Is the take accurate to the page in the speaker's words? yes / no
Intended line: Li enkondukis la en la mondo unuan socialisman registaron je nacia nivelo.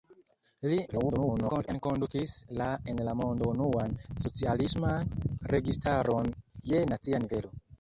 no